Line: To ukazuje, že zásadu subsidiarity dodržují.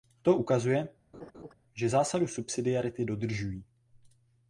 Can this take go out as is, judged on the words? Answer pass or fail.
pass